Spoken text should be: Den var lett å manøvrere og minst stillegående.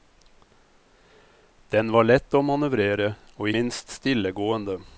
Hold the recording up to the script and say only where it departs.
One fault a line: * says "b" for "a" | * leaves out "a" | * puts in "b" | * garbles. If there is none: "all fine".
all fine